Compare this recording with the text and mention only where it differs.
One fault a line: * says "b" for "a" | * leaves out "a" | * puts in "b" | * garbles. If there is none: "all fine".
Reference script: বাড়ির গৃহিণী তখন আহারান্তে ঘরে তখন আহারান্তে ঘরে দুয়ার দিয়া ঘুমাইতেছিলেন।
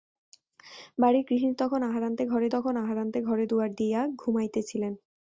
all fine